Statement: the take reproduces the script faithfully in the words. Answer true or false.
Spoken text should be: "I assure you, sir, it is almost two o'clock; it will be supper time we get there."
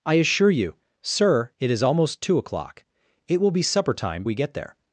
true